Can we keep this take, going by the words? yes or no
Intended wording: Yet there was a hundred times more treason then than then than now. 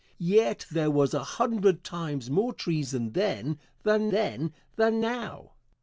yes